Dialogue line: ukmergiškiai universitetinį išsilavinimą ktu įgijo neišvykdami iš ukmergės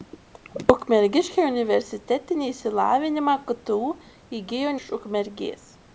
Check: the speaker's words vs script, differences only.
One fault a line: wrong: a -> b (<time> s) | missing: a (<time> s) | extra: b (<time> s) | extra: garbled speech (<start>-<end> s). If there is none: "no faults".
missing: neišvykdami (4.7 s)